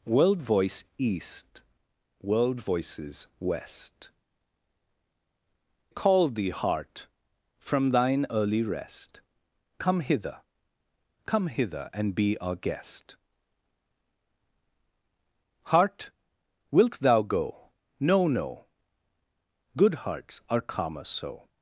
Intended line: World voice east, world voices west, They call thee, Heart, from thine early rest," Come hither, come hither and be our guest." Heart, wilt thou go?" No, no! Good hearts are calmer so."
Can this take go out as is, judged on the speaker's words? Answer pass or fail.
fail